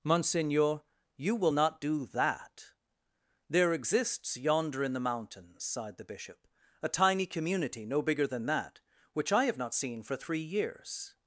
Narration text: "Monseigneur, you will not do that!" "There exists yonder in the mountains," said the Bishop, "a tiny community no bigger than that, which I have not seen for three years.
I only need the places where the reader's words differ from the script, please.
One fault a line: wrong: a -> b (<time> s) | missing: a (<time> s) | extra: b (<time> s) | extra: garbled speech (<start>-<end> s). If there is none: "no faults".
wrong: said -> sighed (5.7 s)